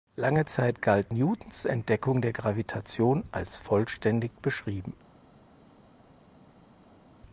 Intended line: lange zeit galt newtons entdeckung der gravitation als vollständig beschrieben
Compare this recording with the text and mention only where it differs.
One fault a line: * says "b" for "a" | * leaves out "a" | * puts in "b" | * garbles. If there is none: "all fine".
all fine